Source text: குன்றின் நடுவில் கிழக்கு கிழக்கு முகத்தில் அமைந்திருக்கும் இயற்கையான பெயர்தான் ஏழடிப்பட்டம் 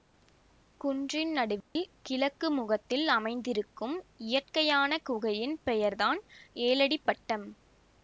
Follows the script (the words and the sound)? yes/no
no